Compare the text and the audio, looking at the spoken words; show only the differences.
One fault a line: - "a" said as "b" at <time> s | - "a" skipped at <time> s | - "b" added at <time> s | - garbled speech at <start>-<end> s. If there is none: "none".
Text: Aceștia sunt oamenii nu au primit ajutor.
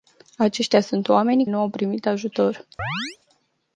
none